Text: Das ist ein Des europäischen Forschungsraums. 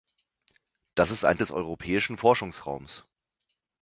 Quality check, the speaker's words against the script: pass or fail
pass